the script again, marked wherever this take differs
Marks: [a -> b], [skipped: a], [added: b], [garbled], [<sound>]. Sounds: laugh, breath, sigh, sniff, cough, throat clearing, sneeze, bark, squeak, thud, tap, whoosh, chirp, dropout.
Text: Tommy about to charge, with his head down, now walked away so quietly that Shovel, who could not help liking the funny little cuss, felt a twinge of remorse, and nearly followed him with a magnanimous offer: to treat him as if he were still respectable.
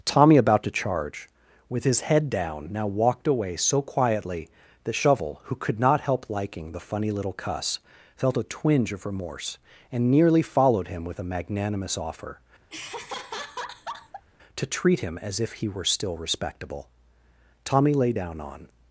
Tommy about to charge, with his head down, now walked away so quietly that Shovel, who could not help liking the funny little cuss, felt a twinge of remorse, and nearly followed him with a magnanimous offer: [laugh] to treat him as if he were still respectable. [added: Tommy lay down on]